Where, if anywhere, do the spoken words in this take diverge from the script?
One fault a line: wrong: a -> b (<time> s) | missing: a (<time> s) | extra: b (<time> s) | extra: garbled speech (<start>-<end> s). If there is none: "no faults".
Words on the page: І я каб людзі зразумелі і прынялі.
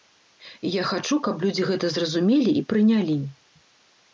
extra: хачу (0.9 s)
extra: гэта (1.7 s)